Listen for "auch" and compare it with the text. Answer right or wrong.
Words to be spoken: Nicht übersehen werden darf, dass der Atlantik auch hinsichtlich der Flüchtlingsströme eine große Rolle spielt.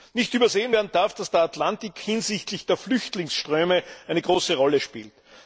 wrong